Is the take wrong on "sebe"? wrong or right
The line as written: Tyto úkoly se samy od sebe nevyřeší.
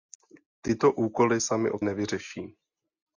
wrong